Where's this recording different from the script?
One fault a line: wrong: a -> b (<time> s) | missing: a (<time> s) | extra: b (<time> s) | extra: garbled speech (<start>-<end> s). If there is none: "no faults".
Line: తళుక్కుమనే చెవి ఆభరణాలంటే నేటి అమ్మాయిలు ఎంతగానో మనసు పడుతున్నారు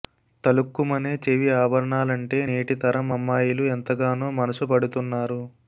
extra: తరం (2.8 s)